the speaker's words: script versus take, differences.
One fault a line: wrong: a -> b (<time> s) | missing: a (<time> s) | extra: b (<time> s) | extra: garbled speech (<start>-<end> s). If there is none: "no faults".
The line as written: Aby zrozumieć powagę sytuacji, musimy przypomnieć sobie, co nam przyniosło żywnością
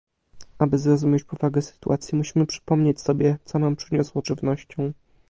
no faults